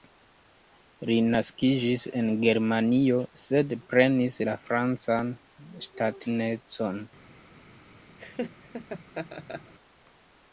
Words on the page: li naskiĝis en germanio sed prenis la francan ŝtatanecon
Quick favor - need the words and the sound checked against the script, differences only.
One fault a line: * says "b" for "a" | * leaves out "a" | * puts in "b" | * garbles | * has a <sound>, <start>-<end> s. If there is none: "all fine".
* has a laugh, 8.2-9.7 s